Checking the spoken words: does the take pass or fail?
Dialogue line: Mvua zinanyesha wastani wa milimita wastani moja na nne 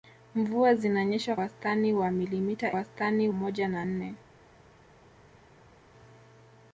pass